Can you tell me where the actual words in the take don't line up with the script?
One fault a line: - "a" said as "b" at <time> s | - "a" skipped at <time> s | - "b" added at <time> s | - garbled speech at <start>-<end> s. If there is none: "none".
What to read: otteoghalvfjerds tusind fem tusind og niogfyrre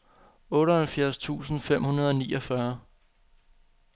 - "tusind" said as "hundrede" at 1.8 s